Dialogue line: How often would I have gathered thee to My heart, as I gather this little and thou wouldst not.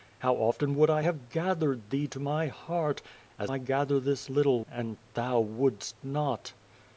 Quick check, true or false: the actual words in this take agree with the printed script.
true